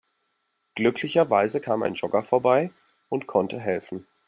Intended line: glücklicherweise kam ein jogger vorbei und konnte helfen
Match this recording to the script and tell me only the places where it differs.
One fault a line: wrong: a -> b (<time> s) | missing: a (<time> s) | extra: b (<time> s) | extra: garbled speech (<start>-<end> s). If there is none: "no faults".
no faults